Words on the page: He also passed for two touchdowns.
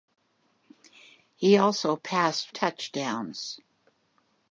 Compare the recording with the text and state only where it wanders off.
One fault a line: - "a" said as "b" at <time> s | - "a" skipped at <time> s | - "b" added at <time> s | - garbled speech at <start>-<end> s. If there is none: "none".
- "for two" skipped at 2.6 s